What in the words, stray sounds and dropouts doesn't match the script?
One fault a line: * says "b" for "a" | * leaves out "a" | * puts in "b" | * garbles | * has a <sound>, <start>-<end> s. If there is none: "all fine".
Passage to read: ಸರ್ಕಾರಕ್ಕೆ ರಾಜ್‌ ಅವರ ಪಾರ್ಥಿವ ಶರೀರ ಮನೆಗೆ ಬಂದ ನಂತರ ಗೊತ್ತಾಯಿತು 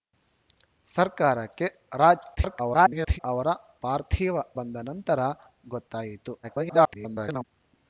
* garbles
* leaves out "ಶರೀರ ಮನೆಗೆ"
* garbles